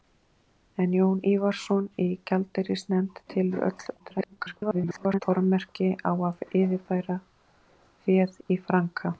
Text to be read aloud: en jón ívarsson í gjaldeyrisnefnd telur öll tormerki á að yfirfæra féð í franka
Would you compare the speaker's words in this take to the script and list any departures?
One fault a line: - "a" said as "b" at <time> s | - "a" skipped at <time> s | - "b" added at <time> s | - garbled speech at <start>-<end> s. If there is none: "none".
- garbled speech at 4.0-5.2 s